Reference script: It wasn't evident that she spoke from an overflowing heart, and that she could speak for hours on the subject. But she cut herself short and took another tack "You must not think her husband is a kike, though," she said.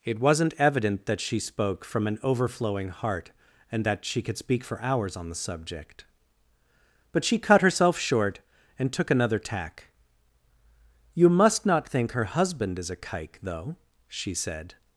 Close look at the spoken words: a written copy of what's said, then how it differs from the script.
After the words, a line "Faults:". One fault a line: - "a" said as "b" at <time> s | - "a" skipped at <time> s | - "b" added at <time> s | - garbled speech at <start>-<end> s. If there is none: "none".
It wasn't evident that she spoke from an overflowing heart, and that she could speak for hours on the subject. But she cut herself short and took another tack "You must not think her husband is a kike, though," she said.
Faults:
none